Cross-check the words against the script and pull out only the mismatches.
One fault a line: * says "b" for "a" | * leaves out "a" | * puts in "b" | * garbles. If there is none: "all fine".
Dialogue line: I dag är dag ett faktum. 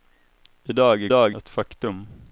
all fine